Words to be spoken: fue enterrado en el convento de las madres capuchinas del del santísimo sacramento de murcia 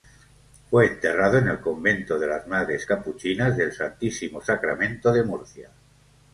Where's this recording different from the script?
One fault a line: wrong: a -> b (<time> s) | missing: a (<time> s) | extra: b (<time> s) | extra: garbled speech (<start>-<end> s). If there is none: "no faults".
missing: del (3.7 s)